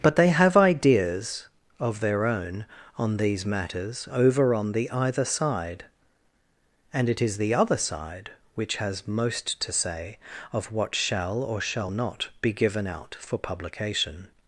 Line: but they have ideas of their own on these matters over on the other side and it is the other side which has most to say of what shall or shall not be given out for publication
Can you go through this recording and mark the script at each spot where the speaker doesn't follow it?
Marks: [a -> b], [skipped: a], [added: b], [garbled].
but they have ideas of their own on these matters over on the [other -> either] side and it is the other side which has most to say of what shall or shall not be given out for publication